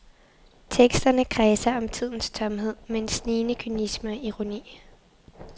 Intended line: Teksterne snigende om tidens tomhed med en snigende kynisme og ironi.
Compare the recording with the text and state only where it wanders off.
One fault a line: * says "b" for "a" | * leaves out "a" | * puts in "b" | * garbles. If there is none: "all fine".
* says "kredser" for "snigende"